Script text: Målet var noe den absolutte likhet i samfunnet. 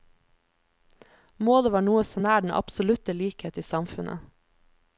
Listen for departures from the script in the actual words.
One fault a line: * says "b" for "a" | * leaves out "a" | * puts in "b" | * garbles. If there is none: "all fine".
* puts in "så nær"